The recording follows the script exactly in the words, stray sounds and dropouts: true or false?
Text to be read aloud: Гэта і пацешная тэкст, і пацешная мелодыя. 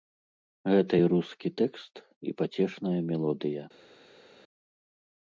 false